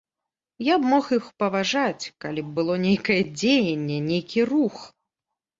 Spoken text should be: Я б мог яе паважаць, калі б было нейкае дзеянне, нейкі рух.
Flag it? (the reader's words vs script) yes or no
yes